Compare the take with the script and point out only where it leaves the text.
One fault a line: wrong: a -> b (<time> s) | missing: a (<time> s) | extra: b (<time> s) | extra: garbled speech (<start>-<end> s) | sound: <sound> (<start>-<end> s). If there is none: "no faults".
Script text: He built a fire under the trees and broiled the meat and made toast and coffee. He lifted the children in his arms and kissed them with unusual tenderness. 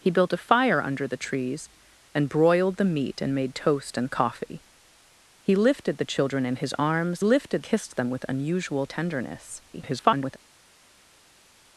wrong: and -> lifted (7.2 s)
extra: garbled speech (9.7-10.4 s)